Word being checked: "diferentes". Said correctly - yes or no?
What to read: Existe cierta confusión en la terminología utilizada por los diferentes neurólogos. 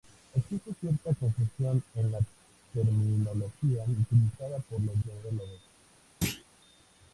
no